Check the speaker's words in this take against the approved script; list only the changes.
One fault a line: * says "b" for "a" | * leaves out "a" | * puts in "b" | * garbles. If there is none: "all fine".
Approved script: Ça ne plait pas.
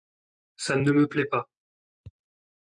* puts in "me"